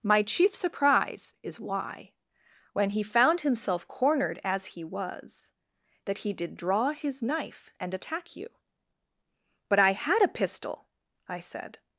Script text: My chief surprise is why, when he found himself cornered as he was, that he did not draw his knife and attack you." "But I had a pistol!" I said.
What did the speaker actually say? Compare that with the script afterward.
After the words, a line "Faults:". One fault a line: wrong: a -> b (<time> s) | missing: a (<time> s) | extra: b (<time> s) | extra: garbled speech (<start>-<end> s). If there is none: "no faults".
My chief surprise is why, when he found himself cornered as he was, that he did draw his knife and attack you." "But I had a pistol!" I said.
Faults:
missing: not (6.6 s)